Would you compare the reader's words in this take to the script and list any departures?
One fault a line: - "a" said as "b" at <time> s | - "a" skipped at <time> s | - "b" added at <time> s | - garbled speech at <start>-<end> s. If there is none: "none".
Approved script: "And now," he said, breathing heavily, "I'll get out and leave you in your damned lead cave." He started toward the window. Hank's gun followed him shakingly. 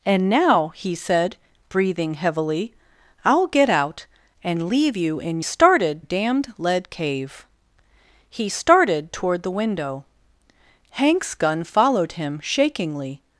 - "your" said as "started" at 5.4 s